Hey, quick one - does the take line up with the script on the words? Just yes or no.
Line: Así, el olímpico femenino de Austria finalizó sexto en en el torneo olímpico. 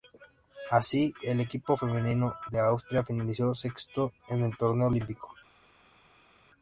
no